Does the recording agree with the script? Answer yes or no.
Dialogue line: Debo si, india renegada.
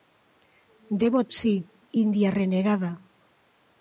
yes